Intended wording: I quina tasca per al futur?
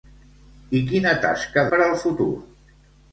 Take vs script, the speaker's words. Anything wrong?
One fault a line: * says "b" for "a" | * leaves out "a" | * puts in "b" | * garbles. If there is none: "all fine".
all fine